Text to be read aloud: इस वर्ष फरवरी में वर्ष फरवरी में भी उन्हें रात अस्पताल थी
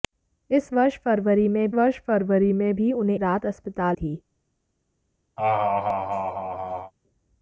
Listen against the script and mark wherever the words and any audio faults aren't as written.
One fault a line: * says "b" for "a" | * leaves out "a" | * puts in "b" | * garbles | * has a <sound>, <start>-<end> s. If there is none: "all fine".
* has a laugh, 5.4-6.9 s